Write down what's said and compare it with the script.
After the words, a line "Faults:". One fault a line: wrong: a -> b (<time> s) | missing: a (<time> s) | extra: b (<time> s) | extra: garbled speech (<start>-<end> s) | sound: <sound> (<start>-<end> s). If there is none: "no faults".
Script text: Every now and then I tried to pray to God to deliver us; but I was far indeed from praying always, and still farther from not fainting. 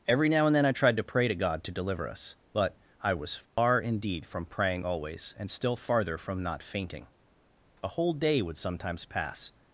Every now and then I tried to pray to God to deliver us; but I was far indeed from praying always, and still farther from not fainting. A whole day would sometimes pass
Faults:
sound: dropout (3.5-3.6 s)
extra: A whole day would sometimes pass (7.8 s)